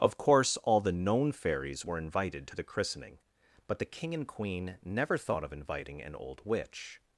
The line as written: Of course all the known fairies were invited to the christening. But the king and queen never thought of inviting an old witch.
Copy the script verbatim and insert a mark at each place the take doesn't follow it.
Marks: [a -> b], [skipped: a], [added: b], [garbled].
Of course all the known fairies were invited to the christening. But the king and queen never thought of inviting an old witch.